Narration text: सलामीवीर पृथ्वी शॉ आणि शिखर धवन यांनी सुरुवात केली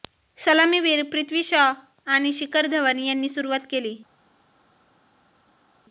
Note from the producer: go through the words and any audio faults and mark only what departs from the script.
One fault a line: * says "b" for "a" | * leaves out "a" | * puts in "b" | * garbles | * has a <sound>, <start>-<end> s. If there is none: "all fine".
all fine